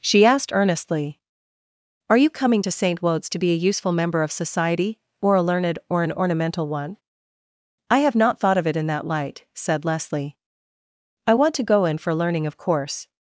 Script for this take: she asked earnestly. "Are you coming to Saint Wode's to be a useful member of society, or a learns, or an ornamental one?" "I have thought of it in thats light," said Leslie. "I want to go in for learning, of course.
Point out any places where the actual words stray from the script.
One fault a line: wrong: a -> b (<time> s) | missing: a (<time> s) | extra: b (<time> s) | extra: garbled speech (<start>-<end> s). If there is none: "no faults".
wrong: learns -> learned (5.4 s)
extra: not (8.1 s)
wrong: thats -> that (8.9 s)